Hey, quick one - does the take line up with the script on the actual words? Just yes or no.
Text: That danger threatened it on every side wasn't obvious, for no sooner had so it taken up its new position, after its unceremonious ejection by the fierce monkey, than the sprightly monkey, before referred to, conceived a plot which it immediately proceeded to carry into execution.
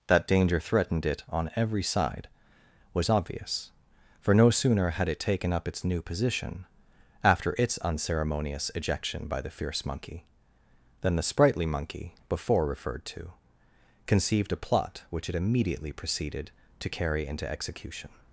no